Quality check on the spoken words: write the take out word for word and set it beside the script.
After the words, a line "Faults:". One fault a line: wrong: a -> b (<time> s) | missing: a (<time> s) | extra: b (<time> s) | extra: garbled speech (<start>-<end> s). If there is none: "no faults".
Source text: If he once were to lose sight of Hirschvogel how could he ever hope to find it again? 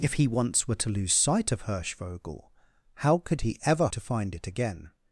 If he once were to lose sight of Hirschvogel how could he ever to find it again?
Faults:
missing: hope (3.9 s)